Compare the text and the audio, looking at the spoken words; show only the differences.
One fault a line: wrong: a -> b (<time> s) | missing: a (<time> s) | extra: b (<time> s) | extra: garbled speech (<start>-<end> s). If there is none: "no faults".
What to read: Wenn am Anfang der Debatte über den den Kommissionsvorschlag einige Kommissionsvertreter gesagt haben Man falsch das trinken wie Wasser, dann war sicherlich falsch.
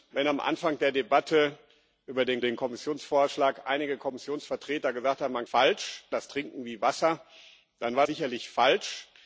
no faults